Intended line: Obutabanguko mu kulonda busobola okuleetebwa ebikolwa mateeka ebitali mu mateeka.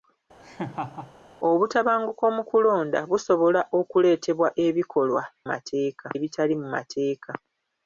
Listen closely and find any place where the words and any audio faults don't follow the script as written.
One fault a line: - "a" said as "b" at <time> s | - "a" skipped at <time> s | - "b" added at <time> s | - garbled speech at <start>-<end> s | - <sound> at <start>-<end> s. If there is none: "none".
- laugh at 0.4-1.1 s